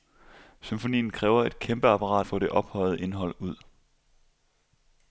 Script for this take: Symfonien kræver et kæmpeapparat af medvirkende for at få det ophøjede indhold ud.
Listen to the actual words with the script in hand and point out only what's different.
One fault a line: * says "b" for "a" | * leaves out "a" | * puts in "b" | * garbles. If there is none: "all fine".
* leaves out "af medvirkende for"